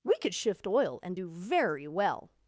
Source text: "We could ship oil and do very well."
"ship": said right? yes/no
no